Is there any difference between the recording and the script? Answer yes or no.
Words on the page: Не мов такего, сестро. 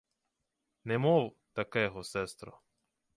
no